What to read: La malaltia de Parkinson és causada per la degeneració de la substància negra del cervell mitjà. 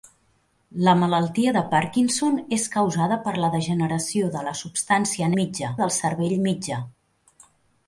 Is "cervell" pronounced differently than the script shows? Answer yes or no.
no